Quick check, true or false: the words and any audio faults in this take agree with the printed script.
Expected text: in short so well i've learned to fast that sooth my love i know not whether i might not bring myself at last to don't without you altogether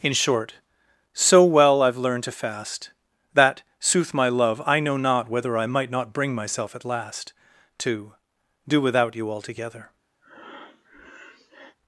false